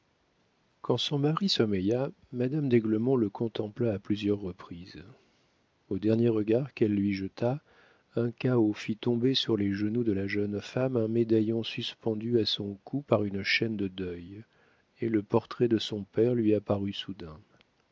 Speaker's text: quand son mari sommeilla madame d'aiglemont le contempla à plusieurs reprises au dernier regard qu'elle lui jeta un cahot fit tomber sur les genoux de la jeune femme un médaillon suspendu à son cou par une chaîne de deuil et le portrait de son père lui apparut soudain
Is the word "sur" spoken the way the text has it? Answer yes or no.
yes